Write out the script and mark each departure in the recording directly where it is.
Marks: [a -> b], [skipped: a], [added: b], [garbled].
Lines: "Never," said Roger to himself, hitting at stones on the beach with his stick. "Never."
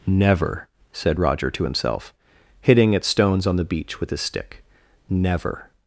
"Never," said Roger to himself, hitting at stones on the beach with his stick. "Never."